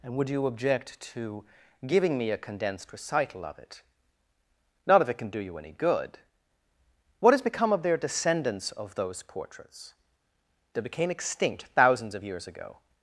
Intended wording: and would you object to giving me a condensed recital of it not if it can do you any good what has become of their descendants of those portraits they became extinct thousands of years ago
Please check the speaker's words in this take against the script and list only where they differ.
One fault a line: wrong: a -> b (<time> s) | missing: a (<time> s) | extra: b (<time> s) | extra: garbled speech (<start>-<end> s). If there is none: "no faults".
no faults